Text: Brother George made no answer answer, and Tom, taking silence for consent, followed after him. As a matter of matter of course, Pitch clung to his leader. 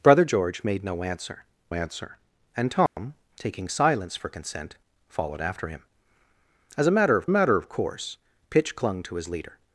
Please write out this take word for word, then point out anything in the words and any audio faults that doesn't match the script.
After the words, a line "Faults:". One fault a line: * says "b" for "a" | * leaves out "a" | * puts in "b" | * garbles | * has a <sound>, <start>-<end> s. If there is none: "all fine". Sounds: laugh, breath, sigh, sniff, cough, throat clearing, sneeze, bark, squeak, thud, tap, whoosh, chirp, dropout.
Brother George made no answer answer, and Tom, taking silence for consent, followed after him. As a matter of matter of course, Pitch clung to his leader.
Faults:
* has a dropout, 2.9-3.0 s